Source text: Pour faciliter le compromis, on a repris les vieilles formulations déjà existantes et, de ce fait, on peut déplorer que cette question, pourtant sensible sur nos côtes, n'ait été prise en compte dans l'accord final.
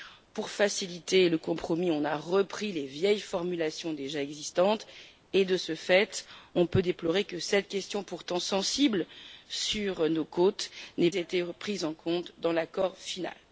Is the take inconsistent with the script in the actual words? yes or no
no